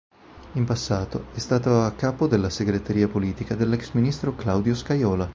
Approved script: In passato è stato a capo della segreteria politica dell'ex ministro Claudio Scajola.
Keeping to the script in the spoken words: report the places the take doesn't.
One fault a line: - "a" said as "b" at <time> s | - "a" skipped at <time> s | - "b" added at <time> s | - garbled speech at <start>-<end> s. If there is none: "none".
none